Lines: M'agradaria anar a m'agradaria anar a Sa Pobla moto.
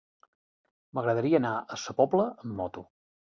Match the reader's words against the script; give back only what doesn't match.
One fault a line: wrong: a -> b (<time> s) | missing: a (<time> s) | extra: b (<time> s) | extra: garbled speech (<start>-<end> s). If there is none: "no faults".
missing: m'agradaria anar a (1.8 s)
extra: amb (2.4 s)